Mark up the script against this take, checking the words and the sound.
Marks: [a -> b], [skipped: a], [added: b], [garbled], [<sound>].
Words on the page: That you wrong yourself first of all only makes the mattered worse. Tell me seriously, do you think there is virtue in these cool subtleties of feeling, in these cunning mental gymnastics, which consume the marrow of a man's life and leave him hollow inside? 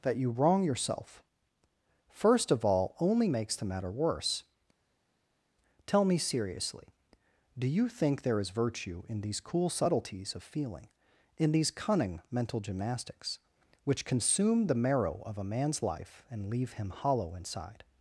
That you wrong yourself first of all only makes the [mattered -> matter] worse. Tell me seriously, do you think there is virtue in these cool subtleties of feeling, in these cunning mental gymnastics, which consume the marrow of a man's life and leave him hollow inside?